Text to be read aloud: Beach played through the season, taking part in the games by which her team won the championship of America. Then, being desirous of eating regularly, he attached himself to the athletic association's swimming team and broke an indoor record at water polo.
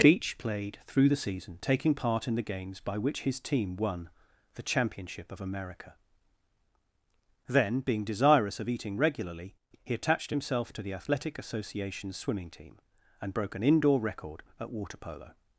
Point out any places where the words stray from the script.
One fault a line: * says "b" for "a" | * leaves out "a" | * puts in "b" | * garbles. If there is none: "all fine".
* says "his" for "her"